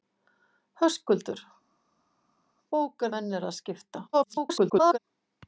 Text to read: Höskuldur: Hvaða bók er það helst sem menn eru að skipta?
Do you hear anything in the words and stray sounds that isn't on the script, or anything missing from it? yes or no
yes